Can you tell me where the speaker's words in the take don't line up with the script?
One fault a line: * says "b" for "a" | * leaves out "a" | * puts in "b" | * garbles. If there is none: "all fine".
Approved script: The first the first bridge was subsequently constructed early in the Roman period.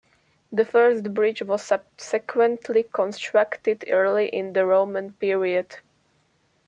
* leaves out "the first"